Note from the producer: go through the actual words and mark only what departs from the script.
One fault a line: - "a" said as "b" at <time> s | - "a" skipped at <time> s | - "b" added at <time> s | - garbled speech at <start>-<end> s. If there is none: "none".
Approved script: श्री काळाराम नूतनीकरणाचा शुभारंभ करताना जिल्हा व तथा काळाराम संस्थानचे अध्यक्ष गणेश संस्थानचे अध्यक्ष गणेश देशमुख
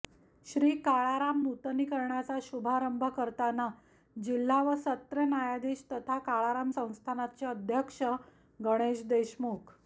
- "सत्र न्यायाधीश" added at 4.8 s
- "संस्थानचे अध्यक्ष गणेश" skipped at 9.0 s